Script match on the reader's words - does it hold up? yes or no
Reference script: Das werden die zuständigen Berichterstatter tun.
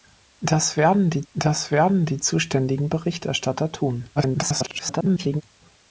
no